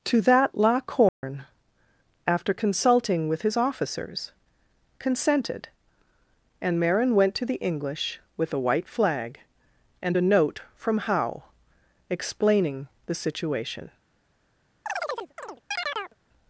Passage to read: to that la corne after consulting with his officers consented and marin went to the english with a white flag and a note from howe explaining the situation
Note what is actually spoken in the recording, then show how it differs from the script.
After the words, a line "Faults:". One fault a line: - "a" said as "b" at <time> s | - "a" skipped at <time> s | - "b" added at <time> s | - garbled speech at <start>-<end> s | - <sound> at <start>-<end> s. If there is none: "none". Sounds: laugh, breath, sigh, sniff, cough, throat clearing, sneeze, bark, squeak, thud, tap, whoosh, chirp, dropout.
to that la corne after consulting with his officers consented and marin went to the english with a white flag and a note from howe explaining the situation
Faults:
- dropout at 1.1-1.2 s
- chirp at 14.9-16.2 s